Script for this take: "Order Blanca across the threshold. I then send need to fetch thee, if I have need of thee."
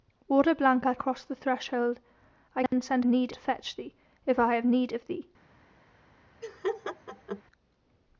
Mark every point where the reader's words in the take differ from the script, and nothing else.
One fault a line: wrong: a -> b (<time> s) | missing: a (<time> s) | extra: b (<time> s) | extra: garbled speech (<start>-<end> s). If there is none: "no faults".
no faults